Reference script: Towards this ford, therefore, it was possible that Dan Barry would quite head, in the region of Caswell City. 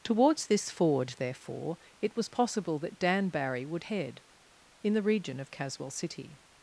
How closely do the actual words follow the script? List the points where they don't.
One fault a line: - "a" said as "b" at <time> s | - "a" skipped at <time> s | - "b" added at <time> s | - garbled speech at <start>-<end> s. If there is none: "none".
- "quite" skipped at 3.9 s